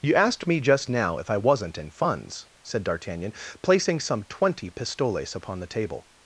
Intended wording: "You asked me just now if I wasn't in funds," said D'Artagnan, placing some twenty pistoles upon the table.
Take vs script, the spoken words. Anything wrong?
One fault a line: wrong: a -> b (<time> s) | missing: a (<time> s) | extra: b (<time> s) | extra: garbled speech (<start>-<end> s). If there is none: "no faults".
no faults